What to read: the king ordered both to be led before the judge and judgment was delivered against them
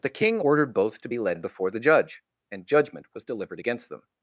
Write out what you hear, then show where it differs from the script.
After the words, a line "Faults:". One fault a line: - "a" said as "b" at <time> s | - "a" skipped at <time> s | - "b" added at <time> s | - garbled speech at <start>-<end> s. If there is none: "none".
the king ordered both to be led before the judge and judgment was delivered against them
Faults:
none